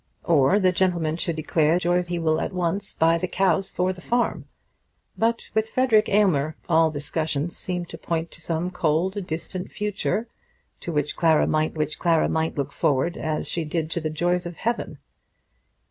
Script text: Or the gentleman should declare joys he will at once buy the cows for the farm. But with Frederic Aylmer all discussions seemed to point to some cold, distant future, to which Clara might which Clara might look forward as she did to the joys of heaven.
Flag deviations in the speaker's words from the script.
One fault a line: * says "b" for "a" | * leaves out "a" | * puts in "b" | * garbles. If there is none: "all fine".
all fine